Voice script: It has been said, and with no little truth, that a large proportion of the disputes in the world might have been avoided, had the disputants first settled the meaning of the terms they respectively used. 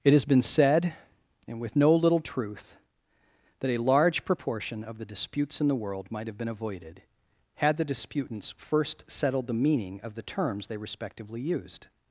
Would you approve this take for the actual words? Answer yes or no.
yes